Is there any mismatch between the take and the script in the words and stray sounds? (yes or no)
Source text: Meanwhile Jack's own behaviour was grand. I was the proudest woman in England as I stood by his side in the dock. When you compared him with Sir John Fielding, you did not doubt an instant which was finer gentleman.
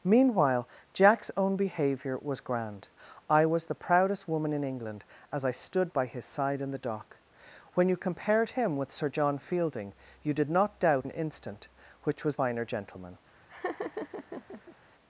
yes